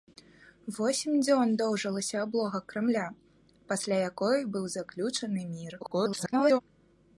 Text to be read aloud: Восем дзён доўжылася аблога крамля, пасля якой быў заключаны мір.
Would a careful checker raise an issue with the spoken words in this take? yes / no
yes